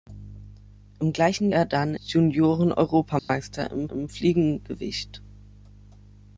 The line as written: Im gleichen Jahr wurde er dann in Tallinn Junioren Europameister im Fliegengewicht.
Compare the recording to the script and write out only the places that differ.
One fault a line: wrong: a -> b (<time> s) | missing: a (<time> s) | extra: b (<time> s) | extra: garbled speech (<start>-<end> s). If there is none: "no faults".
missing: Jahr wurde (1.5 s)
missing: in Tallinn (1.9 s)
extra: im (3.9 s)